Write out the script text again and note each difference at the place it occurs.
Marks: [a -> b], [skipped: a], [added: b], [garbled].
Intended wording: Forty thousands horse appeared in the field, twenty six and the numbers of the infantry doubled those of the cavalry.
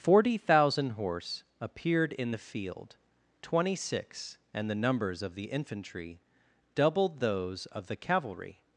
Forty [thousands -> thousand] horse appeared in the field, twenty six and the numbers of the infantry doubled those of the cavalry.